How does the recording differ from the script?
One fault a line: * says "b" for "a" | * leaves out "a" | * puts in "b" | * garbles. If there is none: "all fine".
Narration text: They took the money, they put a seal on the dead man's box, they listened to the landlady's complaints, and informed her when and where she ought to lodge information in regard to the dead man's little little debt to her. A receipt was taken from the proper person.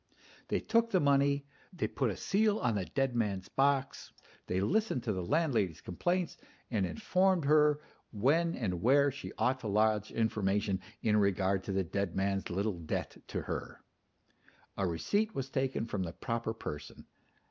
* leaves out "little"